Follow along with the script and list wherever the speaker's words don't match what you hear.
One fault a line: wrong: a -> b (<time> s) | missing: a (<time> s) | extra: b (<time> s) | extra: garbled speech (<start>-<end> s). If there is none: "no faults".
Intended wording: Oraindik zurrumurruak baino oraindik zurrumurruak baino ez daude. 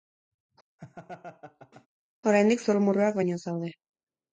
missing: oraindik zurrumurruak baino (3.4 s)